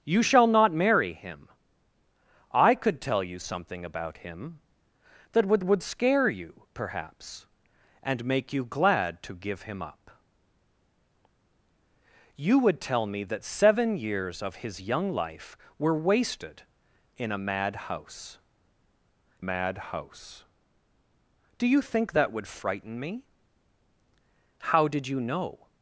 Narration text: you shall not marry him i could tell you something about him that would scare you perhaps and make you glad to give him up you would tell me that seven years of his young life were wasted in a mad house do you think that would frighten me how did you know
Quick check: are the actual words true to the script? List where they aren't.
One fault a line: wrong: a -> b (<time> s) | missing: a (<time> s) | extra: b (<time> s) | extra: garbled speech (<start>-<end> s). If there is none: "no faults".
extra: would (5.6 s)
extra: mad house (19.4 s)